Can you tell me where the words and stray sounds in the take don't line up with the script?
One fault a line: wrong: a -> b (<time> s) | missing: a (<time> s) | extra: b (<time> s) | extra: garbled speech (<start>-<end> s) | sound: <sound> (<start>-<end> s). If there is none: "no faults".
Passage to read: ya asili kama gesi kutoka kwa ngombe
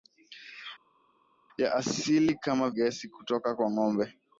no faults